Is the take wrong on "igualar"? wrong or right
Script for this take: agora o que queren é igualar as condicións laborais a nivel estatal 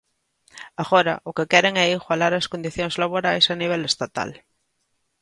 right